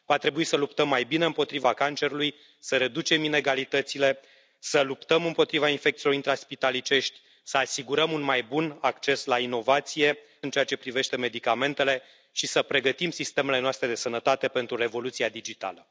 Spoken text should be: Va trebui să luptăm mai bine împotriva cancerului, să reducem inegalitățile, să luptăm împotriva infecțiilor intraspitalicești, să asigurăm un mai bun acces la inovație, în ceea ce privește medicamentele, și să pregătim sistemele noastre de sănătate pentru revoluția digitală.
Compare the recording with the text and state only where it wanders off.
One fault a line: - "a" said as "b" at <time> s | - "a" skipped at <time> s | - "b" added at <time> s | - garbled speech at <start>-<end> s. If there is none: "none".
none